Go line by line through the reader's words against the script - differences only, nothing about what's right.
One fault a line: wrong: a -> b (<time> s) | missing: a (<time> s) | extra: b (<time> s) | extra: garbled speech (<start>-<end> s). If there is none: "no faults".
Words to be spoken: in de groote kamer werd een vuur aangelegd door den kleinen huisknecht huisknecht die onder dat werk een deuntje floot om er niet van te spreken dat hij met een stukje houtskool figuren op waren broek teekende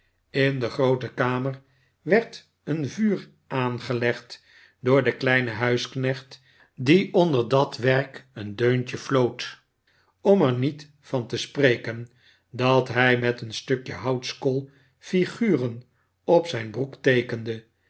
missing: huisknecht (6.4 s)
wrong: waren -> zijn (16.5 s)